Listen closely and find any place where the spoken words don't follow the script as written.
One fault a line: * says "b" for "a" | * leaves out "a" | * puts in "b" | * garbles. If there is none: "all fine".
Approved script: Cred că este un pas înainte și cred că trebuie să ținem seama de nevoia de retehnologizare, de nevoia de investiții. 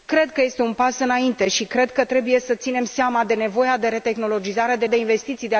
* leaves out "nevoia"